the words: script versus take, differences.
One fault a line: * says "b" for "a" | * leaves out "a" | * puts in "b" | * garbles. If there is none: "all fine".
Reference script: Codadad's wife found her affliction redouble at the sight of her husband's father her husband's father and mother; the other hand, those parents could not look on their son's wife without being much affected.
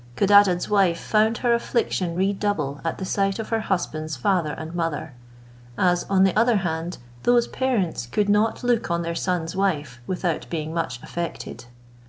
* says "and mother as on" for "her husband's father and mother"